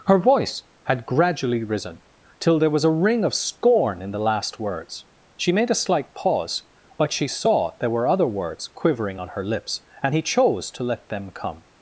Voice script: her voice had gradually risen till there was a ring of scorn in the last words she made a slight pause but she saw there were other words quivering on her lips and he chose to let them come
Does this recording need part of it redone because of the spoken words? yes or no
no